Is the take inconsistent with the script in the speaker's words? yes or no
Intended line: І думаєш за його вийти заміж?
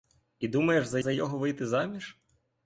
yes